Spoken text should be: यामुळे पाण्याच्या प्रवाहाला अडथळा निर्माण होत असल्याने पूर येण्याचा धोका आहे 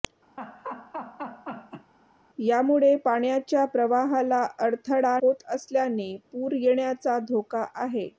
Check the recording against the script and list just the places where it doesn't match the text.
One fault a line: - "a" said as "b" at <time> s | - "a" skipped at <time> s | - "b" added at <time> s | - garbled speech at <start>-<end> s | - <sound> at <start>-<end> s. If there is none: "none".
- laugh at 0.4-1.9 s
- "निर्माण" skipped at 5.2 s